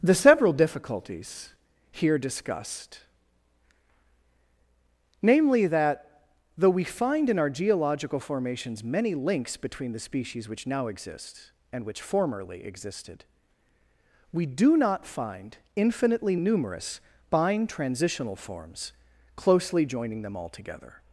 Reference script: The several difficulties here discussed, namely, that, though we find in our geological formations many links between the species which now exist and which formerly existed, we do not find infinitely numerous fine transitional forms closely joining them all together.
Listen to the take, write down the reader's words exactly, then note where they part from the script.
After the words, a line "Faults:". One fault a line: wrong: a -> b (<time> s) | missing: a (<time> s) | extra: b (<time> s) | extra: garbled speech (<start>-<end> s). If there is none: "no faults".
The several difficulties here discussed, namely, that, though we find in our geological formations many links between the species which now exist and which formerly existed, we do not find infinitely numerous bind transitional forms closely joining them all together.
Faults:
wrong: fine -> bind (17.3 s)